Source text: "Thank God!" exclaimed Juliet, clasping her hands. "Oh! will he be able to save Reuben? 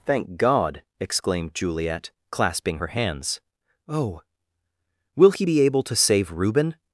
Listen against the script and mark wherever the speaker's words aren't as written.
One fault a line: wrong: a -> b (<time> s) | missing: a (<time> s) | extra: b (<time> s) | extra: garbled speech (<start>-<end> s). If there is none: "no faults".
no faults